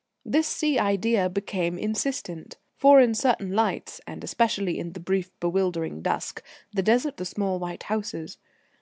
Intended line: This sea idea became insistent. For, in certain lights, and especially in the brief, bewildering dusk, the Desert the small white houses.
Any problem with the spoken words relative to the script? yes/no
no